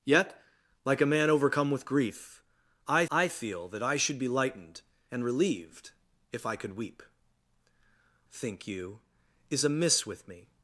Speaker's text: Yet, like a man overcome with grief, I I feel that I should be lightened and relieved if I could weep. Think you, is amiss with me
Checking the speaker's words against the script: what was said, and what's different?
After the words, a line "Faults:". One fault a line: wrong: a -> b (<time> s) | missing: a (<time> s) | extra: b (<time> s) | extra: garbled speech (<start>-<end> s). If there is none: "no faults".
Yet, like a man overcome with grief, I I feel that I should be lightened and relieved if I could weep. Think you, is amiss with me
Faults:
no faults